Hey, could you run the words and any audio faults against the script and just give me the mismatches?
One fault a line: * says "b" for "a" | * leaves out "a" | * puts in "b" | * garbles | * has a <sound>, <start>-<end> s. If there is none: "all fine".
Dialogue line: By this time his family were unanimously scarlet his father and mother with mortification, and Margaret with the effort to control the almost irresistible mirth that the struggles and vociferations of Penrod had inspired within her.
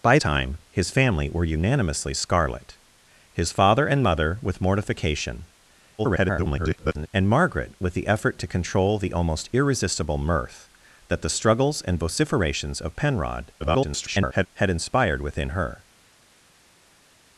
* leaves out "this"
* garbles
* garbles